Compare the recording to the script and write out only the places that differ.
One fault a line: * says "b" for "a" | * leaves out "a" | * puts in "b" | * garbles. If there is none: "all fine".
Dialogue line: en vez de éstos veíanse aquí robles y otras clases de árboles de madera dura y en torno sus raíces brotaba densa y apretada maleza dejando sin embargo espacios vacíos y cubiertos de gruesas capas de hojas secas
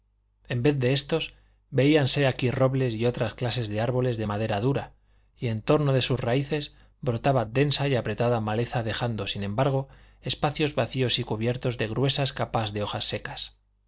* puts in "de"